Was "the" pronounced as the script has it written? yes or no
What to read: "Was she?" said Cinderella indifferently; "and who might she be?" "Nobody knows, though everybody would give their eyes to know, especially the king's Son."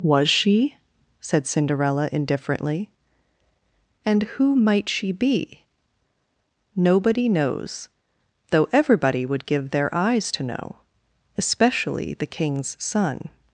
yes